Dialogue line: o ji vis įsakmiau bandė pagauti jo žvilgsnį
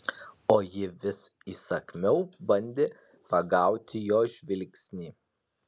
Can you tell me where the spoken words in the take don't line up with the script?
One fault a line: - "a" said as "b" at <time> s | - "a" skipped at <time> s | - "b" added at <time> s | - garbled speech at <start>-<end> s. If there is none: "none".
none